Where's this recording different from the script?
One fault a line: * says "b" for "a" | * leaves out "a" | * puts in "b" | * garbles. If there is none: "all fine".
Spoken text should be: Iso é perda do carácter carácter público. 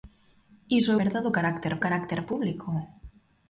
all fine